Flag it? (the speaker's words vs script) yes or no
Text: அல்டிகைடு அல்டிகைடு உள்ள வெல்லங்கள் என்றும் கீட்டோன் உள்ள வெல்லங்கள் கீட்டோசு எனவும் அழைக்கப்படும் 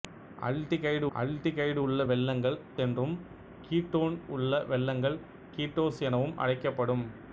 no